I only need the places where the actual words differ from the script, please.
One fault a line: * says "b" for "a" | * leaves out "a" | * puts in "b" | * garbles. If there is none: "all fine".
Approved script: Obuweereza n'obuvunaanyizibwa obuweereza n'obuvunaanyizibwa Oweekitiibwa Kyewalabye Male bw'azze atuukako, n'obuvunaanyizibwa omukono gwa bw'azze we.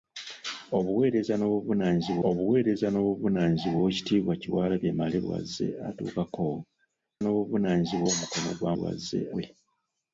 all fine